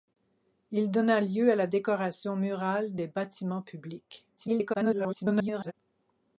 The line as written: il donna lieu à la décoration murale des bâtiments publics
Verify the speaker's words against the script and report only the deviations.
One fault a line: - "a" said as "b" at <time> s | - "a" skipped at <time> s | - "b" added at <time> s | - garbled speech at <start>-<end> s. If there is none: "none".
- garbled speech at 4.4-5.7 s